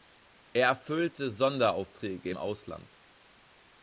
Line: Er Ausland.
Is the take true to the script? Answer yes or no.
no